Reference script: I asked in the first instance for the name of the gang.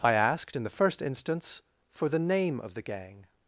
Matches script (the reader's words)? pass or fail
pass